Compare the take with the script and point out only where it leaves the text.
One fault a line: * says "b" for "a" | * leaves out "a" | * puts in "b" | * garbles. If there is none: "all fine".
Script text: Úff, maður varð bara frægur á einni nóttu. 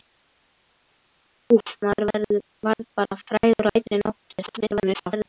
* garbles